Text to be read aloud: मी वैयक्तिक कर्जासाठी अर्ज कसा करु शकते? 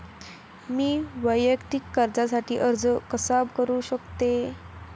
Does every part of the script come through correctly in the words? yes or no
yes